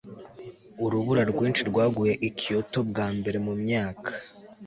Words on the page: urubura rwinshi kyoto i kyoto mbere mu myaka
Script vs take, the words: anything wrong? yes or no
yes